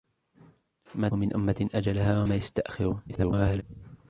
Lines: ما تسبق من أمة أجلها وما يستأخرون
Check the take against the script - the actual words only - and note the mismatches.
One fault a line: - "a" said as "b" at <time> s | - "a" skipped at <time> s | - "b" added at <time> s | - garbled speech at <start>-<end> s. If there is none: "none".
- "تسبق" skipped at 1.1 s
- garbled speech at 3.1-3.6 s